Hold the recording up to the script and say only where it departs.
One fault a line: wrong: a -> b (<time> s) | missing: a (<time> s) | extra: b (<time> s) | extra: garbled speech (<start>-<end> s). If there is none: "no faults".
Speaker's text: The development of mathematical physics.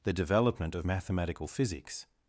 no faults